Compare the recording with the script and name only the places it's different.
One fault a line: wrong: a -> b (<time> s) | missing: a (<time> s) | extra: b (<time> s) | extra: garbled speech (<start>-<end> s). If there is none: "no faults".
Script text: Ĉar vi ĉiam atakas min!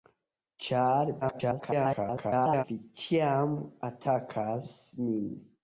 extra: garbled speech (1.2-2.6 s)